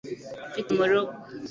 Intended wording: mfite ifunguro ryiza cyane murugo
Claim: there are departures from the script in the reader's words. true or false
true